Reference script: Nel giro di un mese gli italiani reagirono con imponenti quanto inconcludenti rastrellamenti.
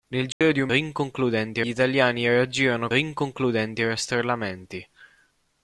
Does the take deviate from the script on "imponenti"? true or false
true